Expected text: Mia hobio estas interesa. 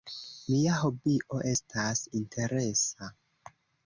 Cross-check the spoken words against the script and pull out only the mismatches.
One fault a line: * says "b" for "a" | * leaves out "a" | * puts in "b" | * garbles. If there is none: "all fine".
all fine